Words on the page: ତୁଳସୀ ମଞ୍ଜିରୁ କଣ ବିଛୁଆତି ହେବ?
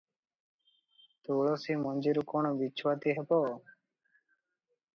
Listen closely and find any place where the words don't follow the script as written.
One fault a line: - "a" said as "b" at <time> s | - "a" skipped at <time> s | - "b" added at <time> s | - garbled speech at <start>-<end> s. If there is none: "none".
none